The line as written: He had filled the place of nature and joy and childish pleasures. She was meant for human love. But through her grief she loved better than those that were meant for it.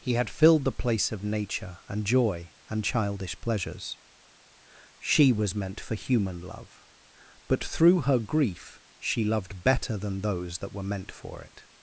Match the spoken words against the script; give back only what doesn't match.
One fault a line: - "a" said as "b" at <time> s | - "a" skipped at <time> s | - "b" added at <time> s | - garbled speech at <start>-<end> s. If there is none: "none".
none